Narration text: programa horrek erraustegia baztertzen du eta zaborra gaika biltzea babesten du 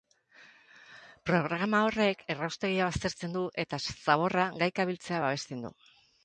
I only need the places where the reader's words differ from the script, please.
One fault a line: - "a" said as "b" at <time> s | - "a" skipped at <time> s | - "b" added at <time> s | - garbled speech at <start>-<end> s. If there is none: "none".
none